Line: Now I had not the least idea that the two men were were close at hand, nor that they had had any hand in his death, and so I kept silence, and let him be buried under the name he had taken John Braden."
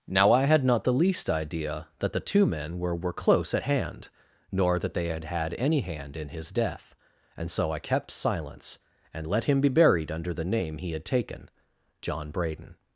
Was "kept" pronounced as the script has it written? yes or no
yes